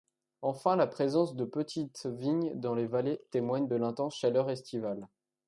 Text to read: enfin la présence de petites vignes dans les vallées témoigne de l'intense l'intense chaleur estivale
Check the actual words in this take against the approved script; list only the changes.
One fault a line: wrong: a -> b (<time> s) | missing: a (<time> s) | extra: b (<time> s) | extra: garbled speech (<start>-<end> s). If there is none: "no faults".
missing: l'intense (4.1 s)